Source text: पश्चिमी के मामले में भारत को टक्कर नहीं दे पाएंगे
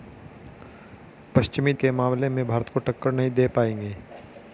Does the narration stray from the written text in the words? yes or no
no